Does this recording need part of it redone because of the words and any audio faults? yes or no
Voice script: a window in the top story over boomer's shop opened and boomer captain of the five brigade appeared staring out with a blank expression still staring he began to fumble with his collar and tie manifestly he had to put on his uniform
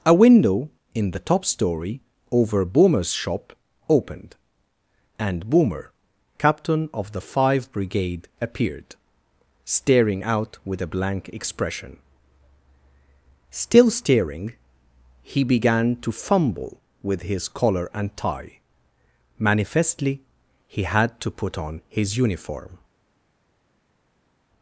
no